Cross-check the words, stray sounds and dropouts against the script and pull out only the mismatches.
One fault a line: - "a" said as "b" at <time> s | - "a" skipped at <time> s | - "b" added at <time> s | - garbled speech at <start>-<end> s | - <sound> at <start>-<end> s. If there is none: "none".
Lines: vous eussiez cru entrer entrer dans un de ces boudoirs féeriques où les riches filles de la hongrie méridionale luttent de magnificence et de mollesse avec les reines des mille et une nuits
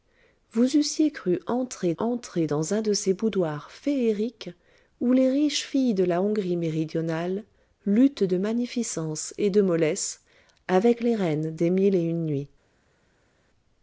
none